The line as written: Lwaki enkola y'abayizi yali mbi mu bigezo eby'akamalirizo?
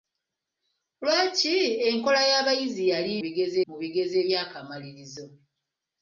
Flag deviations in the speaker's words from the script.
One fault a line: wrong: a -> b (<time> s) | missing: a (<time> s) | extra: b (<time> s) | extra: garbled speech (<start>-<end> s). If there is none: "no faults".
wrong: mbi -> bigezo (3.2 s)